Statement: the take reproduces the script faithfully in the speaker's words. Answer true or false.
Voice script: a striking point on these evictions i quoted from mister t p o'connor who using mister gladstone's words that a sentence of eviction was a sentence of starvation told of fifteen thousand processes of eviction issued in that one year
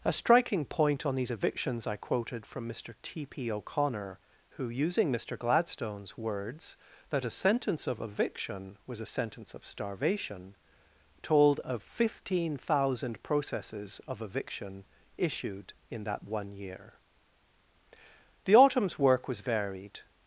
false